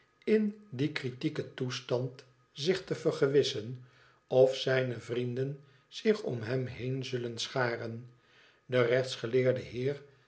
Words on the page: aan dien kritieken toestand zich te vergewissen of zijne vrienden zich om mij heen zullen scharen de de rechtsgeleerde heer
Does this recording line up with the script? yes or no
no